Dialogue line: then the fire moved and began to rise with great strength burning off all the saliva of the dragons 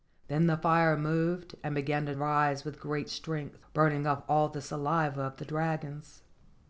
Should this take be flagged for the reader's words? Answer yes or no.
no